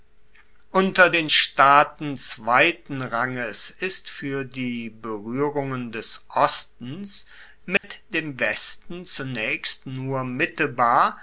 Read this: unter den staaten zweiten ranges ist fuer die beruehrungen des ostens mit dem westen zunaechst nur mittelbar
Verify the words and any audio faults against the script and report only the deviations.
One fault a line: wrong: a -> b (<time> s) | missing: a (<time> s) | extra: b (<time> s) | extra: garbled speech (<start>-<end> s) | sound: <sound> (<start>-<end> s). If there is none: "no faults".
sound: dropout (7.8-7.8 s)